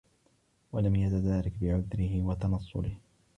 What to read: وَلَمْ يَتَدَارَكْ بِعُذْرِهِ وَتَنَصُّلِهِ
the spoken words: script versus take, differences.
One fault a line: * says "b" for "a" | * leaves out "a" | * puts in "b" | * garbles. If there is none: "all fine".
all fine